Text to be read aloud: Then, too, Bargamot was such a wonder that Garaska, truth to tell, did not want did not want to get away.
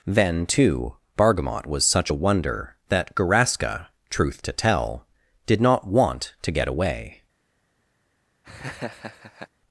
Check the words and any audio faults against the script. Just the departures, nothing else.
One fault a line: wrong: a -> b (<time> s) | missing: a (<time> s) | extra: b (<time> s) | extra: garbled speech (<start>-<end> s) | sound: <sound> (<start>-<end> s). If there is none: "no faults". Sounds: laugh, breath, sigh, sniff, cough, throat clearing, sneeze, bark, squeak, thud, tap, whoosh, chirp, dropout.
missing: did not want (6.3 s)
sound: laugh (8.4-9.5 s)